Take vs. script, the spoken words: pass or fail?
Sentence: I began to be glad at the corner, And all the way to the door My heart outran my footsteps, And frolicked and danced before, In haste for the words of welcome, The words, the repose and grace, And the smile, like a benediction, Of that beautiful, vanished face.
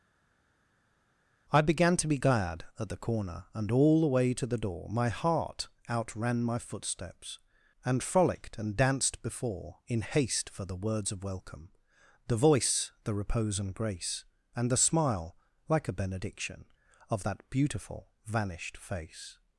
fail